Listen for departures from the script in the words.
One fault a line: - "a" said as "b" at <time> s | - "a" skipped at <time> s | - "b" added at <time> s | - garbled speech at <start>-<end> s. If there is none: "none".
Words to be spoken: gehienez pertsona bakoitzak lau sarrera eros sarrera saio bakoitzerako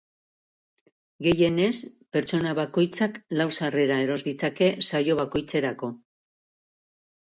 - "sarrera" said as "ditzake" at 4.3 s